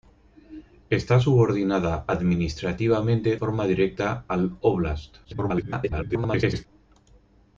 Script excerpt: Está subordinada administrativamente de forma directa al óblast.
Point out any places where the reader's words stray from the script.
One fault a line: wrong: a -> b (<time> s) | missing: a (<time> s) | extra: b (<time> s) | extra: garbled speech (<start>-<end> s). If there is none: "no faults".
missing: de (3.4 s)
extra: garbled speech (5.2-6.7 s)